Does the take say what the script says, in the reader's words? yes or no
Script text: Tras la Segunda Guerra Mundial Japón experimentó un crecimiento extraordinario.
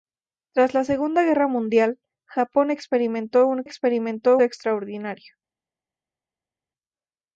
no